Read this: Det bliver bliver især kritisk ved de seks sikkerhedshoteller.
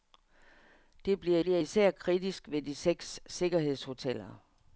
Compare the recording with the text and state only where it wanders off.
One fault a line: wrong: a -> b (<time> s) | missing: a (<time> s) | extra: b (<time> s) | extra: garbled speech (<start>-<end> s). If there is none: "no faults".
no faults